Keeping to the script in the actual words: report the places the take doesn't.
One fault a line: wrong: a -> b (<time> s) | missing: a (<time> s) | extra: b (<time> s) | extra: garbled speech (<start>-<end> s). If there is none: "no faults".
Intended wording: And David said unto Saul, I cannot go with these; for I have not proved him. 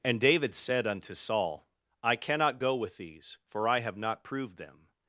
wrong: him -> them (4.6 s)